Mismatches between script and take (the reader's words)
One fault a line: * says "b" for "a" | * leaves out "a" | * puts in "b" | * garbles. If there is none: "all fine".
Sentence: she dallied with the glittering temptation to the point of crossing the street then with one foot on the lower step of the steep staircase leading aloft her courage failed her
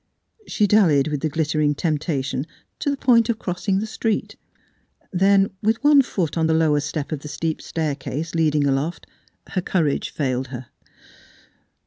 all fine